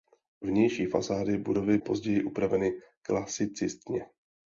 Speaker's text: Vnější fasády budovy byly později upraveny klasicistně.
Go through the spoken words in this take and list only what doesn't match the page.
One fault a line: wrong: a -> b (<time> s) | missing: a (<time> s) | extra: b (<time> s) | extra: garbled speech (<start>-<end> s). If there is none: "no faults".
missing: byly (1.8 s)